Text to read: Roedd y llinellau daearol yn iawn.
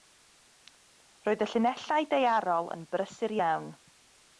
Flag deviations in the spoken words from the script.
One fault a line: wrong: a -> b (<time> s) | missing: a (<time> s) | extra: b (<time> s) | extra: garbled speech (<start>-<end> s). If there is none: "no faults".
extra: brysur (3.0 s)